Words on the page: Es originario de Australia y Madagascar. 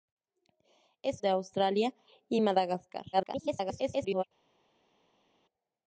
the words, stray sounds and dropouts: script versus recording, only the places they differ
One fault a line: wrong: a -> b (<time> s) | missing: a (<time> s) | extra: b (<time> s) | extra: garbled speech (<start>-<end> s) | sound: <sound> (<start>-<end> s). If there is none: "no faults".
missing: originario (1.2 s)
extra: garbled speech (3.1-4.2 s)